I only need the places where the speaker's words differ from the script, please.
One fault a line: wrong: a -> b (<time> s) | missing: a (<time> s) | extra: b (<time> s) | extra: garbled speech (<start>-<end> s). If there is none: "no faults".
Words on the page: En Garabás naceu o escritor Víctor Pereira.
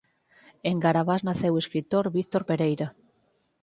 no faults